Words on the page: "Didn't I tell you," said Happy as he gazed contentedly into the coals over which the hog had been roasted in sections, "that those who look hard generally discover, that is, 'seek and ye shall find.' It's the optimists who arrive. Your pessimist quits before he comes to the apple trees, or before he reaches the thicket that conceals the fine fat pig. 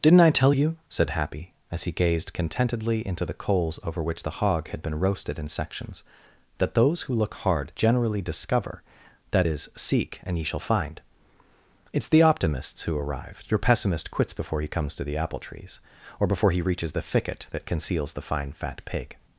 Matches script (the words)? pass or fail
pass